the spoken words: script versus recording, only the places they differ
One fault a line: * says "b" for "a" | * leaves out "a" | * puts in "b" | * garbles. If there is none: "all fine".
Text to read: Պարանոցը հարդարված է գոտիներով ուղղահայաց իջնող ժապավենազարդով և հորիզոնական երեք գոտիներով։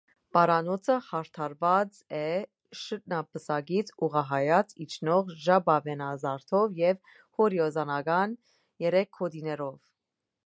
* says "շրթնապսակից" for "գոտիներով"